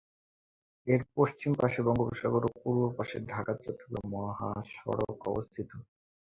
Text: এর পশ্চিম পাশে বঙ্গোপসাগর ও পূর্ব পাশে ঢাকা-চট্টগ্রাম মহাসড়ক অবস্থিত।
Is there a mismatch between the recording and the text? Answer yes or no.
no